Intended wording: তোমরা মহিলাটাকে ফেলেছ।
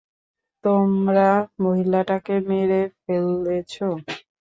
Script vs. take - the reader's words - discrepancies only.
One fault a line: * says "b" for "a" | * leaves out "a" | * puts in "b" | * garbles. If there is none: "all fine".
* puts in "মেরে"